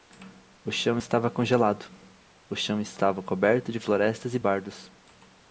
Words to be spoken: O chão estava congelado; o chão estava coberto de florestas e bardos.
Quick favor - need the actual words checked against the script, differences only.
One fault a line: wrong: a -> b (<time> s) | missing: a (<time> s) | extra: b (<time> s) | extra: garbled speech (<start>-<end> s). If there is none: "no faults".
no faults